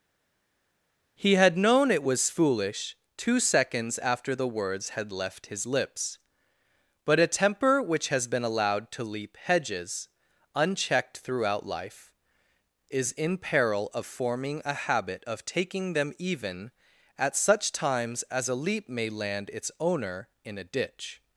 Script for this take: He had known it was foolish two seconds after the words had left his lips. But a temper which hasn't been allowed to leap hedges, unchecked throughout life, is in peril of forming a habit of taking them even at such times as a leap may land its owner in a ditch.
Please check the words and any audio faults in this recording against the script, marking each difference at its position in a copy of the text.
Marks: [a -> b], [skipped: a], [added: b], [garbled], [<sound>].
He had known it was foolish two seconds after the words had left his lips. But a temper which [hasn't -> has] been allowed to leap hedges, unchecked throughout life, is in peril of forming a habit of taking them even at such times as a leap may land its owner in a ditch.